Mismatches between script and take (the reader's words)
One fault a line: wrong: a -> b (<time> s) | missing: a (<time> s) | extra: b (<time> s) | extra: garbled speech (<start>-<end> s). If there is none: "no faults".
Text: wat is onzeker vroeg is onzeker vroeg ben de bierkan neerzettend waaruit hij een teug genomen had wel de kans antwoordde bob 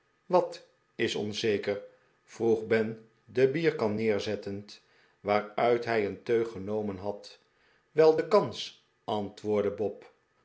missing: is onzeker vroeg (2.7 s)